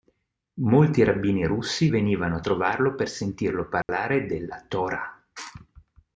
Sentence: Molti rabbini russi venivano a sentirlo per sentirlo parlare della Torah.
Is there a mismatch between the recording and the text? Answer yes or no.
yes